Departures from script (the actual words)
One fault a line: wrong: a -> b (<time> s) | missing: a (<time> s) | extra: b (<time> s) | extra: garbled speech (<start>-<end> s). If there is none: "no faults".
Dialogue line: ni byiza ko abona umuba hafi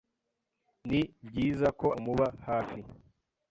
missing: abona (1.9 s)